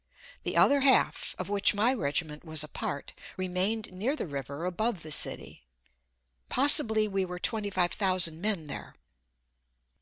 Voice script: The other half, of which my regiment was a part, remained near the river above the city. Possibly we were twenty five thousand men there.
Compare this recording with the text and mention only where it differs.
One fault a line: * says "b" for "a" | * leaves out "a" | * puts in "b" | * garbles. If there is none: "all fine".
all fine